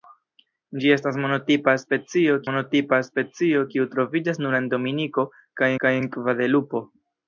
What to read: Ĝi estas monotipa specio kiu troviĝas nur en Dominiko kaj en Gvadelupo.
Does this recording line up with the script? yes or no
no